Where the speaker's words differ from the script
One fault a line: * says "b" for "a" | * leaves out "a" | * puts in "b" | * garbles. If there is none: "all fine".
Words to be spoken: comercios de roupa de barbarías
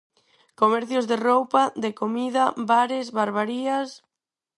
* puts in "comida bares"